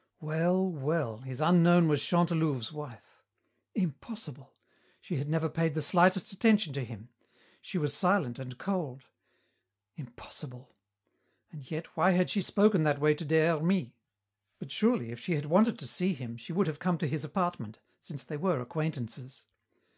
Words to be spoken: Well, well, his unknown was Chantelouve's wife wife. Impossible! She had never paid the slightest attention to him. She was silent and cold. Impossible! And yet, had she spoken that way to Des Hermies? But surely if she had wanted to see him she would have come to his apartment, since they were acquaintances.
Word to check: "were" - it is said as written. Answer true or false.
true